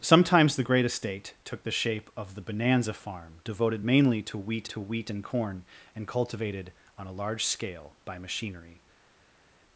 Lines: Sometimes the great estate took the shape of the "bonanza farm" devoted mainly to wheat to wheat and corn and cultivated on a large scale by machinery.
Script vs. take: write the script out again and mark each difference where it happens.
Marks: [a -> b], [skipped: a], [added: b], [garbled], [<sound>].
Sometimes the great estate took the shape of the "bonanza farm" devoted mainly to wheat to wheat and corn and cultivated on a large scale by machinery.